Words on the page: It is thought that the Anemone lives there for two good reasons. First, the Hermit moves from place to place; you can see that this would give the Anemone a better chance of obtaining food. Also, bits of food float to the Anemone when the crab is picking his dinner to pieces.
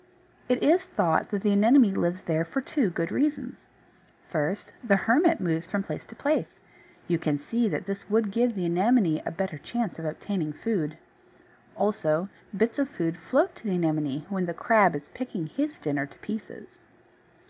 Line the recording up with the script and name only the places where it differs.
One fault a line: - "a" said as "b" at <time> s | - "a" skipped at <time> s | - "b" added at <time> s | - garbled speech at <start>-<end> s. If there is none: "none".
none